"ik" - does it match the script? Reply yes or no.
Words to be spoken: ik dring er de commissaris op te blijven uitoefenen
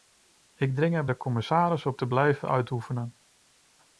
yes